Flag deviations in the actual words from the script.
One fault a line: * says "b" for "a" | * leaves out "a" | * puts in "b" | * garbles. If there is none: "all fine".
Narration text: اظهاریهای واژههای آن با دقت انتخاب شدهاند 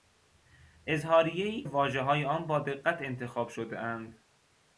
all fine